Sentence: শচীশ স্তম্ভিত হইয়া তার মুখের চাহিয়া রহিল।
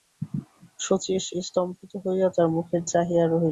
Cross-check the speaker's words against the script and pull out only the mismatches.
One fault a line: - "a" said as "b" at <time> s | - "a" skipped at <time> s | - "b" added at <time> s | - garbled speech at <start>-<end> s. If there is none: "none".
none